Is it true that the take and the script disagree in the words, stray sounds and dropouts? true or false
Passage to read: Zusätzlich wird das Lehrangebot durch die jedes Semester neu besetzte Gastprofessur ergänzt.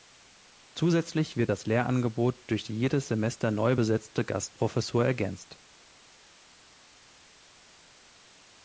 false